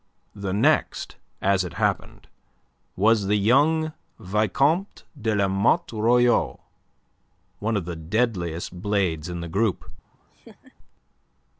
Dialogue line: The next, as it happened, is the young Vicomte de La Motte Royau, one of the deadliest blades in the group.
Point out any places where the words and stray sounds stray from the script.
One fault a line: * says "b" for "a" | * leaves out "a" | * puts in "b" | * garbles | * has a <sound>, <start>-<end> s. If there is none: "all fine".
* says "was" for "is"
* has a laugh, 10.0-10.8 s